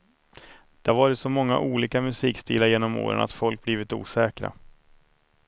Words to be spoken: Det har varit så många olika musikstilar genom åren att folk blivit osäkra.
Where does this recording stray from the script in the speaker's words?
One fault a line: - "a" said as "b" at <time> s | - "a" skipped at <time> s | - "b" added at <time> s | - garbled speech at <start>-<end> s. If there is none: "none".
none